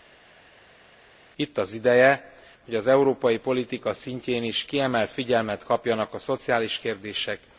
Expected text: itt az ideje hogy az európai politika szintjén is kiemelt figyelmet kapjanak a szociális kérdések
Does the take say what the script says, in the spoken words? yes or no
yes